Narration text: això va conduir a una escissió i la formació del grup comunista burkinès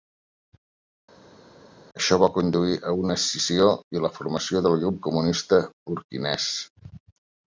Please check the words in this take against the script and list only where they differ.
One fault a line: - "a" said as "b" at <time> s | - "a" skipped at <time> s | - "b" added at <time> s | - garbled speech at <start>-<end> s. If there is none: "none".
none